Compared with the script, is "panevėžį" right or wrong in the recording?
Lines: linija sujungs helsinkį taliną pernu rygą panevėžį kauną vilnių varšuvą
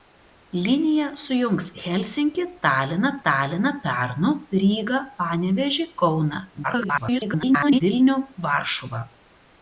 right